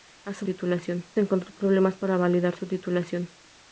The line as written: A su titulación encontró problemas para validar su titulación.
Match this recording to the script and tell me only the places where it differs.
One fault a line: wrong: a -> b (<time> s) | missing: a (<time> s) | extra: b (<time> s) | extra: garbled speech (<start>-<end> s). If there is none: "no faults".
no faults